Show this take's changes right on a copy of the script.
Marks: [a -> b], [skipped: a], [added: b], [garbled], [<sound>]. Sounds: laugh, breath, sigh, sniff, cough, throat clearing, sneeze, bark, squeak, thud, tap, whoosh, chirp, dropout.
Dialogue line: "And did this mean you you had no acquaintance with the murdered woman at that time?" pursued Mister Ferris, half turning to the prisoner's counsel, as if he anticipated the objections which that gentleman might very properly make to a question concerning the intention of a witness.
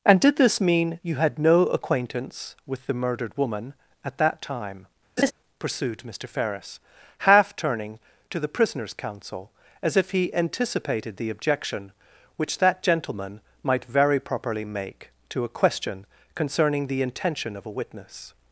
"And did this mean you [skipped: you] had no acquaintance with the murdered woman at that time?" [laugh] pursued Mister Ferris, half turning to the prisoner's counsel, as if he anticipated the [objections -> objection] which that gentleman might very properly make to a question concerning the intention of a witness.